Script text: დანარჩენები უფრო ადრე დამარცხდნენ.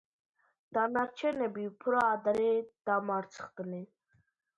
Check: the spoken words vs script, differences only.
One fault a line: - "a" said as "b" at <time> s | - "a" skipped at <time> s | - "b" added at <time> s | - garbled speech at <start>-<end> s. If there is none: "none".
none